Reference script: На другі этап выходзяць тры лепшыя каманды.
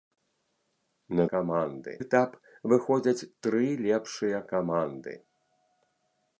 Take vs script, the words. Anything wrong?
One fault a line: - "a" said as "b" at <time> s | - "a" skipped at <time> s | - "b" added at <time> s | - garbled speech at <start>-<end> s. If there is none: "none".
- "другі" said as "каманды" at 1.3 s